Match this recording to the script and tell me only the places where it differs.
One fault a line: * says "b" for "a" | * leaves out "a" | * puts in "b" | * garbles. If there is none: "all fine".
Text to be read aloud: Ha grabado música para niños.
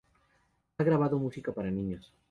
all fine